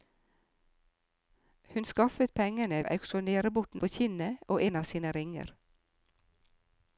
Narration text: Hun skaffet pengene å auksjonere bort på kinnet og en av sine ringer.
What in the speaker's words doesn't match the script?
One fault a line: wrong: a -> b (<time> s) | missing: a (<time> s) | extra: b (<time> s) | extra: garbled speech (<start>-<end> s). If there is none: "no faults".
no faults